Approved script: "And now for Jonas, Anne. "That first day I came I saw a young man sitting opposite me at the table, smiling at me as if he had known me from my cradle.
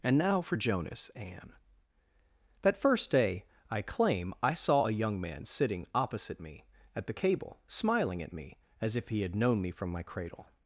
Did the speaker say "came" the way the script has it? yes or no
no